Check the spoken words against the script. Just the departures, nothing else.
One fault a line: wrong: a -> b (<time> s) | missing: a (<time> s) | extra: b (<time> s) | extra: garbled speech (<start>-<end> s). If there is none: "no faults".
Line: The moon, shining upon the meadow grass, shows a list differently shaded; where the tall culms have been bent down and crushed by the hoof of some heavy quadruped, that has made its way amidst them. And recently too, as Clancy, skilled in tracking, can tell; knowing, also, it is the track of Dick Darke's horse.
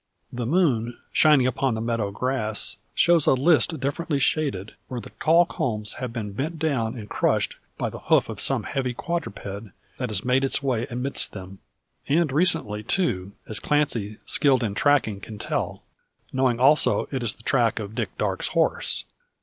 no faults